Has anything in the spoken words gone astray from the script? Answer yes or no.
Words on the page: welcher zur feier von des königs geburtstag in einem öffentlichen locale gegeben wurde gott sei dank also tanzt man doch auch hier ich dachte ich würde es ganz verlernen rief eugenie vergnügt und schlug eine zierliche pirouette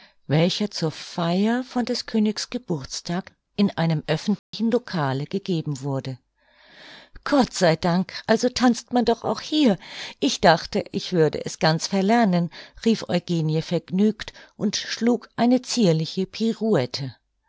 no